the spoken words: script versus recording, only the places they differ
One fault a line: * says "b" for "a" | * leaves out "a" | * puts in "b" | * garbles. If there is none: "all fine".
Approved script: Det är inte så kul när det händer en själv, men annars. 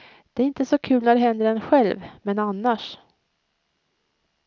all fine